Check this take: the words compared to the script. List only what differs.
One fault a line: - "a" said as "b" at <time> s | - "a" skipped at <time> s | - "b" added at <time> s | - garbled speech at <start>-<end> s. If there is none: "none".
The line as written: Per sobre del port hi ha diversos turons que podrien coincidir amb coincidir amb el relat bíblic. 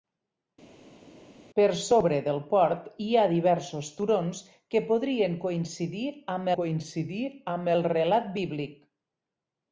none